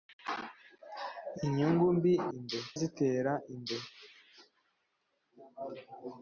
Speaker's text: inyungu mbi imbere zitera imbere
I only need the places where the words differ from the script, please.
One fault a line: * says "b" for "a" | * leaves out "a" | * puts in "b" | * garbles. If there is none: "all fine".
all fine